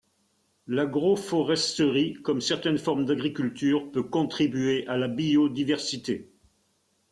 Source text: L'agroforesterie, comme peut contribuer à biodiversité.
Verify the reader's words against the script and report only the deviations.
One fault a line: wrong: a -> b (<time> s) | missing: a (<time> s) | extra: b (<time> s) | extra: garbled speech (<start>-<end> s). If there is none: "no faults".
extra: certaines formes d'agriculture (2.4 s)
extra: la (5.0 s)